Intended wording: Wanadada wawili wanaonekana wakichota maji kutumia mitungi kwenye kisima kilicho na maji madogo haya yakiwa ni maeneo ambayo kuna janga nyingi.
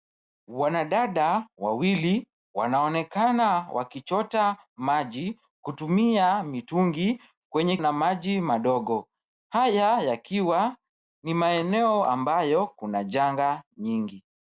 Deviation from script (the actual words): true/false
true